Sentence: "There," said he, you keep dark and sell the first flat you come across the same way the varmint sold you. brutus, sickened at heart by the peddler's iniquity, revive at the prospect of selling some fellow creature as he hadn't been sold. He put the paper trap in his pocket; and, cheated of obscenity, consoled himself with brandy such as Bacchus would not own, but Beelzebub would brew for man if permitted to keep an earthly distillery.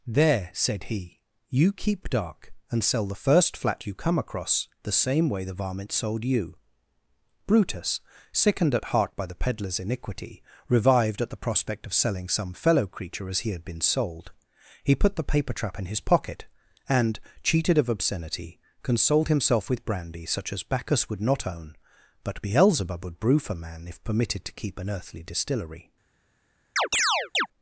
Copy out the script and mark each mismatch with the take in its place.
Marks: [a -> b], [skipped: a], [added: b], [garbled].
"There," said he, you keep dark and sell the first flat you come across the same way the varmint sold you. brutus, sickened at heart by the peddler's iniquity, [revive -> revived] at the prospect of selling some fellow creature as he [hadn't -> had] been sold. He put the paper trap in his pocket; and, cheated of obscenity, consoled himself with brandy such as Bacchus would not own, but Beelzebub would brew for man if permitted to keep an earthly distillery.